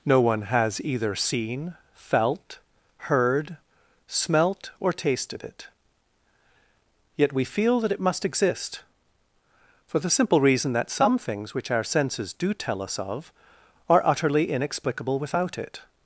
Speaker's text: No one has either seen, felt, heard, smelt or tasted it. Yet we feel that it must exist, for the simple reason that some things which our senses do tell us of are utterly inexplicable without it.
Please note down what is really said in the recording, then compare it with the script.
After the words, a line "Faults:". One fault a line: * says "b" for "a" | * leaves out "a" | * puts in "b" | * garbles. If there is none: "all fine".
No one has either seen, felt, heard, smelt or tasted it. Yet we feel that it must exist, for the simple reason that some things which our senses do tell us of are utterly inexplicable without it.
Faults:
all fine